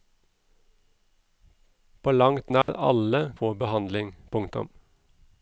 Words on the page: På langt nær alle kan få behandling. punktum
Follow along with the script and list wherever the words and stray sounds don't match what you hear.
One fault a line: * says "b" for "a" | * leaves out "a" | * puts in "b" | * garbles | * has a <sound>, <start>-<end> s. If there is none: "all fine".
* has a dropout, 2.6-2.7 s
* leaves out "kan"